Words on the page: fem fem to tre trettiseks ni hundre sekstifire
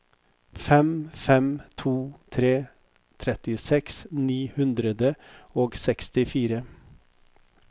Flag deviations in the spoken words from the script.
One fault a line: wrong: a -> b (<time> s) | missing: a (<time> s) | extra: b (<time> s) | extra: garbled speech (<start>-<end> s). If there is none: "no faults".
extra: og (5.6 s)